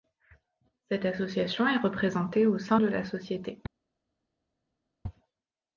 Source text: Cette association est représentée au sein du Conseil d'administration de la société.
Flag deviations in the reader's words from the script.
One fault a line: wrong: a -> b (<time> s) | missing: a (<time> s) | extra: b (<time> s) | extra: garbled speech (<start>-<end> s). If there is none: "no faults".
missing: du Conseil d'administration (2.8 s)